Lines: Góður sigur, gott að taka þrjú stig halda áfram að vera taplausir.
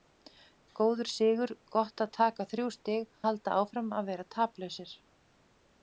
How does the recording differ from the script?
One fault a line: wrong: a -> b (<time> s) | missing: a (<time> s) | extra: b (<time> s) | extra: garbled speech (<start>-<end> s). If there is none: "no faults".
no faults